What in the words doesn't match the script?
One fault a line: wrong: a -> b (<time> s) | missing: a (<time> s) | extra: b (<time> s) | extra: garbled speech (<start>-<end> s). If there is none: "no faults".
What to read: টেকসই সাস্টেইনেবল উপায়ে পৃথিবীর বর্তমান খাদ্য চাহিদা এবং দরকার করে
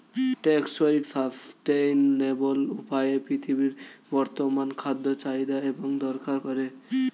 no faults